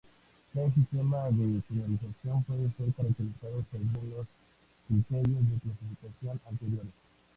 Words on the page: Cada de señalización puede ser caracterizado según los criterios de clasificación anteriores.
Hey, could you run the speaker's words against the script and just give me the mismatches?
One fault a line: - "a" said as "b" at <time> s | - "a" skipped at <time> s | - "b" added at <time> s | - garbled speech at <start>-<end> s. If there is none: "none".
- "sistema" added at 0.7 s